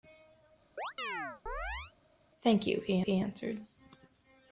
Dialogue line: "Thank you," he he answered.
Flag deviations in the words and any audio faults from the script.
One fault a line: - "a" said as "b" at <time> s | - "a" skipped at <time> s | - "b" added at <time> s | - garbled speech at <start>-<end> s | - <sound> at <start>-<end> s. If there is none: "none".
- chirp at 0.8-1.9 s